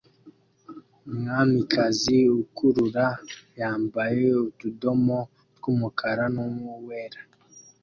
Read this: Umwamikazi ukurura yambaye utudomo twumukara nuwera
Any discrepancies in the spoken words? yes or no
no